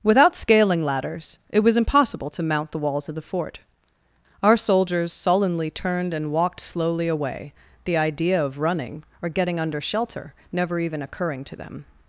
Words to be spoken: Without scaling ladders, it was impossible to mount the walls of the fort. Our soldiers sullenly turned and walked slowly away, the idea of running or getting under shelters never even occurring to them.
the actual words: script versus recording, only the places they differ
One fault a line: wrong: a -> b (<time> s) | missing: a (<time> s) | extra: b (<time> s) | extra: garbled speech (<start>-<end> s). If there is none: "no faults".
wrong: shelters -> shelter (9.8 s)